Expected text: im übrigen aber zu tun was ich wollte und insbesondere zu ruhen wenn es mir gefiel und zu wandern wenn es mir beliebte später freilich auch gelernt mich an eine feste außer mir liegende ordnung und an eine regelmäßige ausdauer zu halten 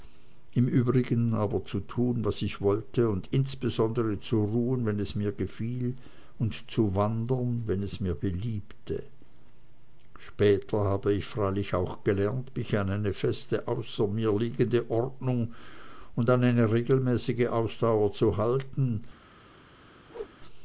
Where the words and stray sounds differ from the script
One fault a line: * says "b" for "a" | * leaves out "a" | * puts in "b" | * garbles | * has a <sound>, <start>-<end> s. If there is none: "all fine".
* puts in "habe ich"
* has a whoosh, 20.1-20.3 s